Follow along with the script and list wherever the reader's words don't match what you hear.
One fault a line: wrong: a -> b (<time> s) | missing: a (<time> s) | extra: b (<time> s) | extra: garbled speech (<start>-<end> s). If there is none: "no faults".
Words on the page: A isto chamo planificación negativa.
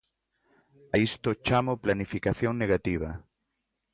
no faults